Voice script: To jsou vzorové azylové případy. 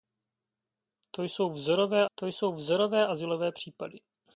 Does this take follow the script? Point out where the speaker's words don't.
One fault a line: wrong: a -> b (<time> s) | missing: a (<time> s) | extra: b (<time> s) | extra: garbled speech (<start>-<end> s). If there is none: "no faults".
extra: to jsou vzorové (2.2 s)